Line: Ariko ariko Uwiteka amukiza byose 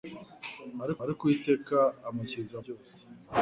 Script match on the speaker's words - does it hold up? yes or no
yes